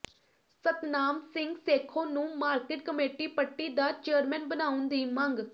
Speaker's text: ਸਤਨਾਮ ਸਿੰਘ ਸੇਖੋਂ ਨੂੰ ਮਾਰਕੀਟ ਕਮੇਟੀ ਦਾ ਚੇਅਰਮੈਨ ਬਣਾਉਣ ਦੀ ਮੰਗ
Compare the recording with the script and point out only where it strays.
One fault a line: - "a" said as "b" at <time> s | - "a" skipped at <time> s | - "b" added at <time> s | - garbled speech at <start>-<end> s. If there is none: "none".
- "ਪੱਟੀ" added at 3.3 s